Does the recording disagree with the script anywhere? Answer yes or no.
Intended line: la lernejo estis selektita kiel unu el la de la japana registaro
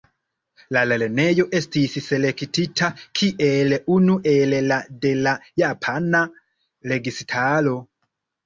no